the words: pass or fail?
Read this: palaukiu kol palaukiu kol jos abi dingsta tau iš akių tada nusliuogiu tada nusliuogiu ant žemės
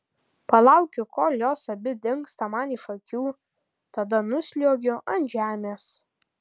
fail